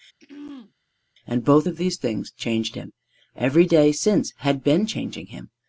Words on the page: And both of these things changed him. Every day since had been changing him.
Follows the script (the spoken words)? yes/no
yes